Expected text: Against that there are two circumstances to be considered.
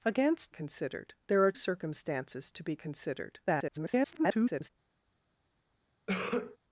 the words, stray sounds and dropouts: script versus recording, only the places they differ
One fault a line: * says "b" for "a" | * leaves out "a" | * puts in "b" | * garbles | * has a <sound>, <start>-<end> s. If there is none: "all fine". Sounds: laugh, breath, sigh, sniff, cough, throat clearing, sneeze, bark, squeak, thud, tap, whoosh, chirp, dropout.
* says "considered" for "that"
* leaves out "two"
* garbles
* has a cough, 6.1-6.6 s